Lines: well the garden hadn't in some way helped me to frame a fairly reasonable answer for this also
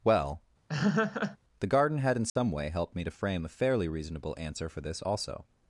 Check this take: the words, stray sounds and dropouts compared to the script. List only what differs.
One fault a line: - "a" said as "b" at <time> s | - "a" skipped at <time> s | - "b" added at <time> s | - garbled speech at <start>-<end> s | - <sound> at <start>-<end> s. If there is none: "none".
- laugh at 0.7-1.4 s
- "hadn't" said as "had" at 2.0 s
- dropout at 2.3-2.4 s